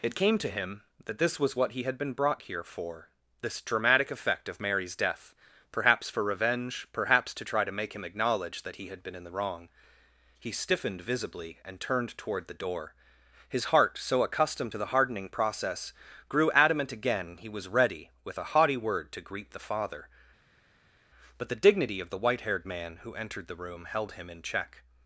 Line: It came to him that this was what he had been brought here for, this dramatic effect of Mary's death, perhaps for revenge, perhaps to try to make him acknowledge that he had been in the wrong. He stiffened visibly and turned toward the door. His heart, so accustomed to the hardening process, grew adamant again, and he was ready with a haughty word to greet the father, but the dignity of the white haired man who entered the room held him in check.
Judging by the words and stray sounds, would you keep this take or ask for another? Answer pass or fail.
fail